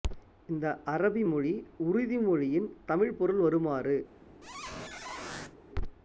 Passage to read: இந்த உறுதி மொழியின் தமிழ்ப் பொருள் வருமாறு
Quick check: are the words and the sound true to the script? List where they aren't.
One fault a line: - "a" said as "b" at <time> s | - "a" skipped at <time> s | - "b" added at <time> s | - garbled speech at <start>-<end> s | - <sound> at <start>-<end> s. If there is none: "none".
- "அரபி மொழி" added at 0.8 s
- squeak at 4.4-5.6 s